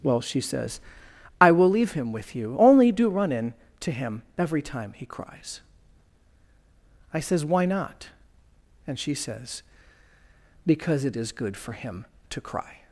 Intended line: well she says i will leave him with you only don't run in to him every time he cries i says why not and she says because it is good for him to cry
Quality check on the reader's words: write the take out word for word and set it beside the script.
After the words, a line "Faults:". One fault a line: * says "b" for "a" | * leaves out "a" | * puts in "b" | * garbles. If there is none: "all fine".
well she says i will leave him with you only do run in to him every time he cries i says why not and she says because it is good for him to cry
Faults:
* says "do" for "don't"